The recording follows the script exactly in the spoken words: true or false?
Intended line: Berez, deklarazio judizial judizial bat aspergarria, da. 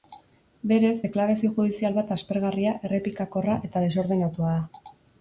false